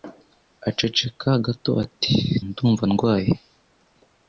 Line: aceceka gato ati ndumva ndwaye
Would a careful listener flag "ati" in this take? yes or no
no